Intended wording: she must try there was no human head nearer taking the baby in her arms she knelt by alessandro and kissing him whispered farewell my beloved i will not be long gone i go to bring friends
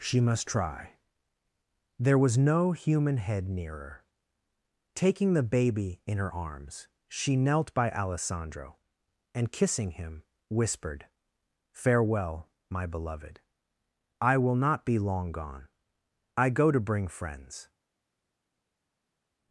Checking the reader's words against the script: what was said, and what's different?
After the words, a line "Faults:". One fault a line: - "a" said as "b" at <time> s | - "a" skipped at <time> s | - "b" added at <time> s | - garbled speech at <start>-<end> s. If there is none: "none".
she must try there was no human head nearer taking the baby in her arms she knelt by alessandro and kissing him whispered farewell my beloved i will not be long gone i go to bring friends
Faults:
none